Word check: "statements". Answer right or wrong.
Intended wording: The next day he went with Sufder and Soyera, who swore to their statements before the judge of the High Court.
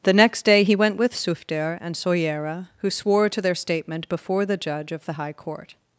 wrong